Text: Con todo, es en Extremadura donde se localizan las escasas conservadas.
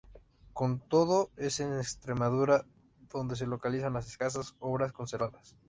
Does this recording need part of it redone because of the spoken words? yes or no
yes